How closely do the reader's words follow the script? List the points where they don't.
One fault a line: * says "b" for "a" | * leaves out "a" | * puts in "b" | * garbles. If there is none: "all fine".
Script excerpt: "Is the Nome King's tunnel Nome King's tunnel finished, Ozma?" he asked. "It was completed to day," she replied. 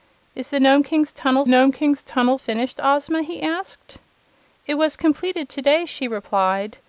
all fine